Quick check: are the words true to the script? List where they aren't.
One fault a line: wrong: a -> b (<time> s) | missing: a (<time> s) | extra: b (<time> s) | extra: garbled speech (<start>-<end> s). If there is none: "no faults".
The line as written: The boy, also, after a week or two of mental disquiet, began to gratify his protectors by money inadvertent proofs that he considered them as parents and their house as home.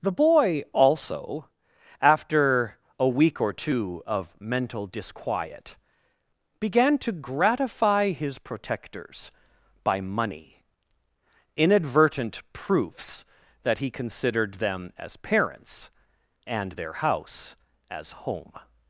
no faults